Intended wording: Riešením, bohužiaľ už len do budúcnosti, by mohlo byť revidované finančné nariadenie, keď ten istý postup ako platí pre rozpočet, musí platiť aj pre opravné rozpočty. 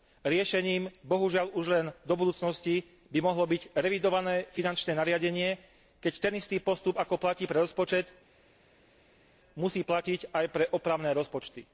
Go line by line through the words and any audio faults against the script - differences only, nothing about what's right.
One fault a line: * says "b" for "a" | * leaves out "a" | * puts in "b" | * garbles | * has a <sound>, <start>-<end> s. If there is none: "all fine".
all fine